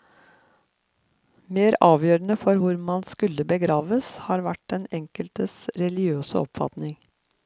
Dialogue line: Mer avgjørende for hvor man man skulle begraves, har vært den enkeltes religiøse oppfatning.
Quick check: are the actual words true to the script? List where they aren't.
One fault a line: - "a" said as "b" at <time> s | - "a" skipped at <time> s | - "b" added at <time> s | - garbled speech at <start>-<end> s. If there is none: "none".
- "man" skipped at 3.0 s